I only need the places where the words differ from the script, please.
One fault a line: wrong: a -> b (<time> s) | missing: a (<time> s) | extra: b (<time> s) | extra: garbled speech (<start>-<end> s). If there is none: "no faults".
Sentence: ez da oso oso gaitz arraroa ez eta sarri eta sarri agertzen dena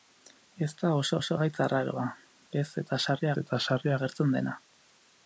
no faults